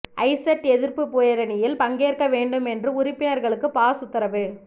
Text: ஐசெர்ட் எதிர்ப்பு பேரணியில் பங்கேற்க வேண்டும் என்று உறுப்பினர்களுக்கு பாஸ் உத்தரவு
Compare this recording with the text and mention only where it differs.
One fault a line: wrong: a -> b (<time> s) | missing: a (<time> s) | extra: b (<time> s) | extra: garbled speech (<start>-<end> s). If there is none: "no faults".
no faults